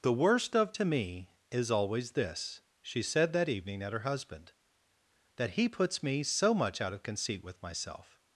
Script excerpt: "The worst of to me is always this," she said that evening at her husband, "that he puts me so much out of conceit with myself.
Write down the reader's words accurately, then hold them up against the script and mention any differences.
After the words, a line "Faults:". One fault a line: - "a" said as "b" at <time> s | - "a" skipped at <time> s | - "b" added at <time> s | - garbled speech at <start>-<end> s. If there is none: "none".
"The worst of to me is always this," she said that evening at her husband, "that he puts me so much out of conceit with myself.
Faults:
none